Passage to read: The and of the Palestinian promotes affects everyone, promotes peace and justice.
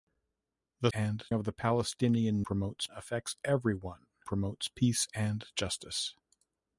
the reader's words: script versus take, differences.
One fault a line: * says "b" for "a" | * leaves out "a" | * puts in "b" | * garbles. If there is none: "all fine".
all fine